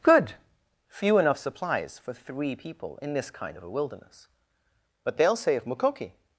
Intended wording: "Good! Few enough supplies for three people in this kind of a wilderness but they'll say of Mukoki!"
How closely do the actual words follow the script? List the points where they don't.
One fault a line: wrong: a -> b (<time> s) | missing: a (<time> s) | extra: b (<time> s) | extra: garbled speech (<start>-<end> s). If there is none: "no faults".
no faults